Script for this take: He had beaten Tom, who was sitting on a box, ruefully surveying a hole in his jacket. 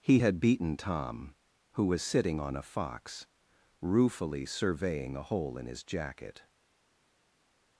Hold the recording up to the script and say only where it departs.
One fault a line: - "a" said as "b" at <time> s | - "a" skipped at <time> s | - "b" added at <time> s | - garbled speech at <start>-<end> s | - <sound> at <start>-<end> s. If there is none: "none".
- "box" said as "fox" at 2.6 s